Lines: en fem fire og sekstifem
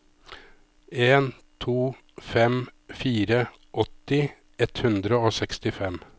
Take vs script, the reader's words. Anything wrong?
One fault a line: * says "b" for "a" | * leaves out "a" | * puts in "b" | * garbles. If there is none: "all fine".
* puts in "to"
* puts in "åtti ett hundre"